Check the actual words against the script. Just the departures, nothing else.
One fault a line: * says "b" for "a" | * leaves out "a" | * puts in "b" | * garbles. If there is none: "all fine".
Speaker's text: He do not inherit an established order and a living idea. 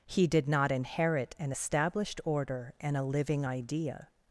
* says "did" for "do"